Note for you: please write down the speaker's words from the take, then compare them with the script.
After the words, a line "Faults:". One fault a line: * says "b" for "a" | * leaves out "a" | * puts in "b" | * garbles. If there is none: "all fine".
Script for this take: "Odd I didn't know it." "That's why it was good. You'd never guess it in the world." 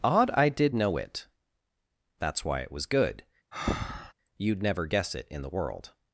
"Odd I did know it." "That's why it was good. You'd never guess it in the world."
Faults:
* says "did" for "didn't"